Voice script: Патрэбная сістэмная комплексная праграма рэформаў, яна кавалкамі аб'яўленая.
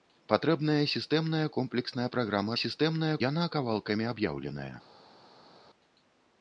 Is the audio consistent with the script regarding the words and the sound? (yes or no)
no